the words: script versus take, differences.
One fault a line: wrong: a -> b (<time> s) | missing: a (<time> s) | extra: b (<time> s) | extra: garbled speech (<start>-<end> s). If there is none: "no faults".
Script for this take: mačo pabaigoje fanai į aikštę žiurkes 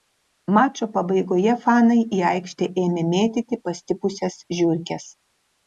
extra: ėmė mėtyti pastipusias (2.8 s)